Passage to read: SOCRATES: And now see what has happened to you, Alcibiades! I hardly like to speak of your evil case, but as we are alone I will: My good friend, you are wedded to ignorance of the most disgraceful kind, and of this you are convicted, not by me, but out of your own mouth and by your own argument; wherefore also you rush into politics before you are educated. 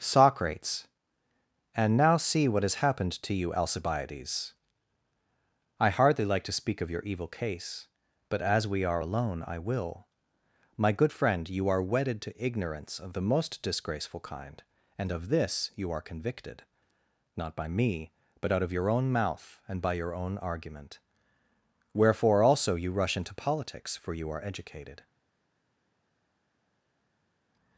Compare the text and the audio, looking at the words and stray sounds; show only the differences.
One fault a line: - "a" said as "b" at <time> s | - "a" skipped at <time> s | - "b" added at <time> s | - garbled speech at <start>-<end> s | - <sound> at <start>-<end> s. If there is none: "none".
- "before" said as "for" at 24.0 s